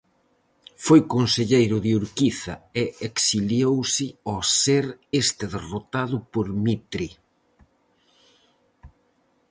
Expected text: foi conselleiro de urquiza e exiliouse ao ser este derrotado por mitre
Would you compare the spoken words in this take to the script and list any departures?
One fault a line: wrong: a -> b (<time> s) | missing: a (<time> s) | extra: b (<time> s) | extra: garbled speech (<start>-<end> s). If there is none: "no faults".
no faults